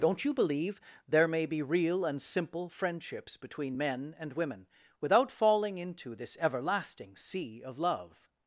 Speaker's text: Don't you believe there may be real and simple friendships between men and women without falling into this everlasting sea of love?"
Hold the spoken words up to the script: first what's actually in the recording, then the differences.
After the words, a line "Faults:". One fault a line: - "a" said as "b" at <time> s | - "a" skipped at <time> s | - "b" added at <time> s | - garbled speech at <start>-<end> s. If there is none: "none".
Don't you believe there may be real and simple friendships between men and women without falling into this everlasting sea of love?"
Faults:
none